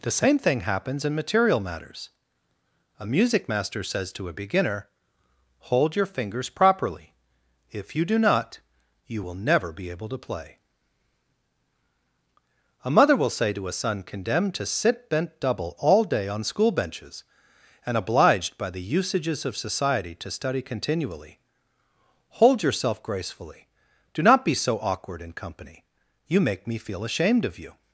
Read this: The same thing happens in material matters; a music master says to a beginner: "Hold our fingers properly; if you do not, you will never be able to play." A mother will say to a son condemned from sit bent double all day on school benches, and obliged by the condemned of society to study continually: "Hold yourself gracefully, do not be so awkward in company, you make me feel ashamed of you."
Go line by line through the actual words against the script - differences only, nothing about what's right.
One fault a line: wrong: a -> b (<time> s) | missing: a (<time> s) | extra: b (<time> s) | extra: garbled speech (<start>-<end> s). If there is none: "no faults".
wrong: our -> your (6.0 s)
wrong: from -> to (14.5 s)
wrong: condemned -> usages (19.0 s)